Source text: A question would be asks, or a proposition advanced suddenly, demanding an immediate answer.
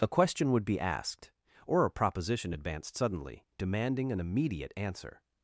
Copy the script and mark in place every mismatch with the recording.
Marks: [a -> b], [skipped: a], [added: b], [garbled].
A question would be [asks, -> asked] or a proposition advanced suddenly, demanding an immediate answer.